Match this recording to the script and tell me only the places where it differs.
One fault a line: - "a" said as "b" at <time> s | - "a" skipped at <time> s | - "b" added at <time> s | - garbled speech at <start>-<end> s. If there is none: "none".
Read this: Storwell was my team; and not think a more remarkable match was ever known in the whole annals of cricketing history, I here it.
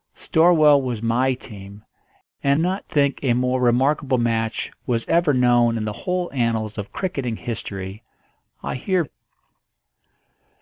none